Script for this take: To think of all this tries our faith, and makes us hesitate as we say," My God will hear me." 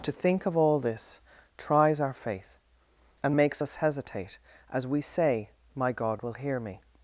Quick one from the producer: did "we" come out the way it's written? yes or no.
yes